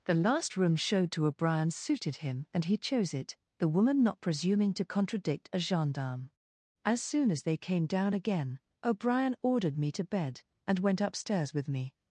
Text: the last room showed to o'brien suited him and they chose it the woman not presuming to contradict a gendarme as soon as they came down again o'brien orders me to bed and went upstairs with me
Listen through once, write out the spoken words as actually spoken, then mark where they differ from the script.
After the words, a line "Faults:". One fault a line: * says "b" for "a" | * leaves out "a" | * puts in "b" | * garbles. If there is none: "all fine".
the last room showed to o'brien suited him and he chose it the woman not presuming to contradict a gendarme as soon as they came down again o'brien ordered me to bed and went upstairs with me
Faults:
* says "he" for "they"
* says "ordered" for "orders"